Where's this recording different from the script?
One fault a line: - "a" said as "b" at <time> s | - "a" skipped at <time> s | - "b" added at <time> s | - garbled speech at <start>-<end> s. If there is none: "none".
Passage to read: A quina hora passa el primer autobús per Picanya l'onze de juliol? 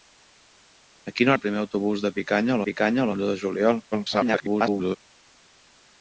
- "hora passa" skipped at 1.3 s
- "Picanya" added at 2.7 s
- garbled speech at 3.9-5.0 s